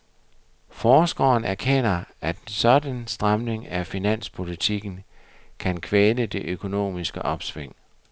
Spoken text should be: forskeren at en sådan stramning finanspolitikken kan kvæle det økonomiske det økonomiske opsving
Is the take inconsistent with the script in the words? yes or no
yes